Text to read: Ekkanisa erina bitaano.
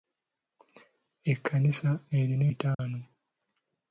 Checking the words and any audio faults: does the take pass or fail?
fail